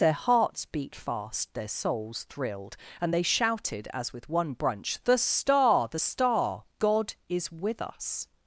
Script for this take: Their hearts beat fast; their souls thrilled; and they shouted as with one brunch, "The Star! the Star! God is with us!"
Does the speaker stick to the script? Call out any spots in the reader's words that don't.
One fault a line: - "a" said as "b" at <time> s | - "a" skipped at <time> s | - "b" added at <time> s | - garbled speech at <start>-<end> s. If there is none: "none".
none